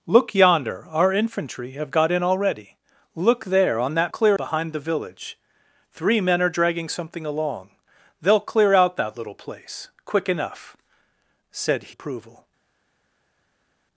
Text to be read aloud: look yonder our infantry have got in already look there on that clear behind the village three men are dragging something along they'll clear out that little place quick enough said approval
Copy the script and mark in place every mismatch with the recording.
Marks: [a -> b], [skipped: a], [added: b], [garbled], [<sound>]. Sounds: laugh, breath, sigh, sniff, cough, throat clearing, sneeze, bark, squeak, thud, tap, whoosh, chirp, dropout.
look yonder our infantry have got in already look there on that clear behind the village three men are dragging something along they'll clear out that little place quick enough said approval